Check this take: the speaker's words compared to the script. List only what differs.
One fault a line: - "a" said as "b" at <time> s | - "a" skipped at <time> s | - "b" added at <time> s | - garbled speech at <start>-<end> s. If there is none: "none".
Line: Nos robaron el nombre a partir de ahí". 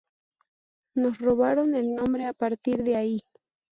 none